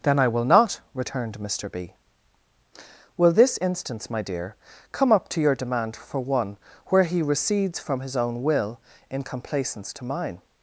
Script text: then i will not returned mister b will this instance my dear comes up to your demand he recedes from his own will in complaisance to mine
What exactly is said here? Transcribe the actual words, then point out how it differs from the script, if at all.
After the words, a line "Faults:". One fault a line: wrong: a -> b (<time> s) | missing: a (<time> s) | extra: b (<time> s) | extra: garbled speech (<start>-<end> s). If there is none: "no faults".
then i will not returned mister b will this instance my dear come up to your demand for one where he recedes from his own will in complaisance to mine
Faults:
wrong: comes -> come (4.9 s)
extra: for one where (6.0 s)